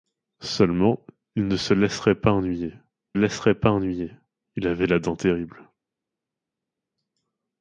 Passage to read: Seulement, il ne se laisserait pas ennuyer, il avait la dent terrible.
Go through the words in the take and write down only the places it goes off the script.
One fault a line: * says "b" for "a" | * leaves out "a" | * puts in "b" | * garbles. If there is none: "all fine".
* puts in "laisserait pas ennuyer"